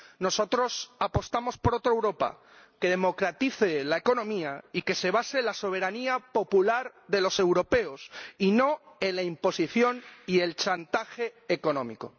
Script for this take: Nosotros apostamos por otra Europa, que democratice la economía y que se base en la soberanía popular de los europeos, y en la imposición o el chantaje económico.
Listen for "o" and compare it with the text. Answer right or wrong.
wrong